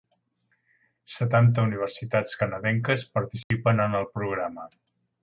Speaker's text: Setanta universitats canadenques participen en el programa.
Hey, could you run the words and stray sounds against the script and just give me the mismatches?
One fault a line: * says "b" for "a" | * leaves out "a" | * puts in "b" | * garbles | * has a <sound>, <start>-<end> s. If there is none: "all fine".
* has a dropout, 3.4-3.5 s